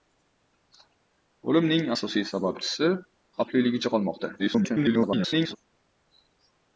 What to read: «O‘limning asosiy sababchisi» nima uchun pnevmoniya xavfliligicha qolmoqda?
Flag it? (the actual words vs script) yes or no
yes